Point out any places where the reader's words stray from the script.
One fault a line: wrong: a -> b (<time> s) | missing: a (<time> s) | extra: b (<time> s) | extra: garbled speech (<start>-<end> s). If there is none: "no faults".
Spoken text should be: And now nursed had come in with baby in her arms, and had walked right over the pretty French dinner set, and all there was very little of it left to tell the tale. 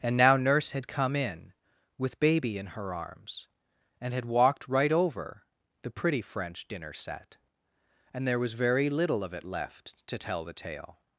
wrong: nursed -> nurse (0.4 s)
missing: all (8.3 s)